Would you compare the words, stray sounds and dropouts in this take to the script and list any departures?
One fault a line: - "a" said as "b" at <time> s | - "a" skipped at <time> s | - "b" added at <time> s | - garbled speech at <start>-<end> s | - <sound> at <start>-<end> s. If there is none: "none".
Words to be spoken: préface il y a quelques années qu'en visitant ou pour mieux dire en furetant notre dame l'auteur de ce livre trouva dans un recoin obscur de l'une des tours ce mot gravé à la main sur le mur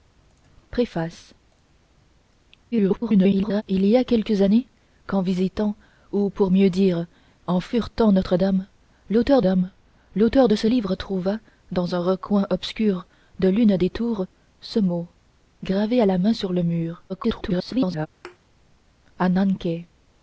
- garbled speech at 2.7-3.6 s
- "dame l'auteur" added at 9.4 s
- garbled speech at 17.1-18.1 s
- thud at 18.2-18.4 s